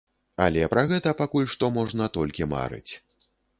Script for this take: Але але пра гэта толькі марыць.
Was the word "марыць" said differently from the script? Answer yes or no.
no